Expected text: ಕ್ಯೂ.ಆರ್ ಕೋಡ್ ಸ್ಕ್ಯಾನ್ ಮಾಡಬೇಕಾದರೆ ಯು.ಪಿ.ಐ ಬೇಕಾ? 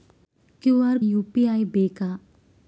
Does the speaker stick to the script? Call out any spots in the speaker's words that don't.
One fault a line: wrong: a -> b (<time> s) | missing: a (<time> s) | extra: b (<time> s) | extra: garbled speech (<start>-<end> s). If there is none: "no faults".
missing: ಕೋಡ್ ಸ್ಕ್ಯಾನ್ ಮಾಡಬೇಕಾದರೆ (1.0 s)